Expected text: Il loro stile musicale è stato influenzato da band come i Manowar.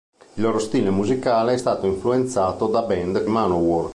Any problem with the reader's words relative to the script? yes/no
yes